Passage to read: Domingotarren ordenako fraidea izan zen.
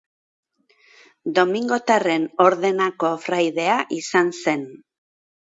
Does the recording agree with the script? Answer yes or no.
yes